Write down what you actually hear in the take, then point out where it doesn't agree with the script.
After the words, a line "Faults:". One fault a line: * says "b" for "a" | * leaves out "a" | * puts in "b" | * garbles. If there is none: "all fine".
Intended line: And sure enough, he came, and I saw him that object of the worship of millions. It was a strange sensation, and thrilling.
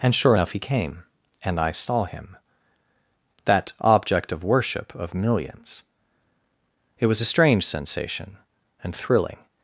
And sure enough, he came, and I saw him that object of worship of millions. It was a strange sensation, and thrilling.
Faults:
* leaves out "the"